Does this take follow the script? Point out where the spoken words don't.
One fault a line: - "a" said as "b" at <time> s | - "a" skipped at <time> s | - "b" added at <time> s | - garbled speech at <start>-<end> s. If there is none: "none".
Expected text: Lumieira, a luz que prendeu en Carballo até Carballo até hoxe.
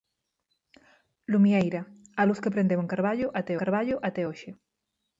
none